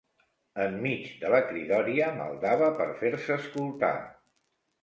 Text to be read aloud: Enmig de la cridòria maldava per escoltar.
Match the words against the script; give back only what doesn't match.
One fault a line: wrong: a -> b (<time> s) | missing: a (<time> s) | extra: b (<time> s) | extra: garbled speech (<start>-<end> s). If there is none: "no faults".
extra: fer se (3.0 s)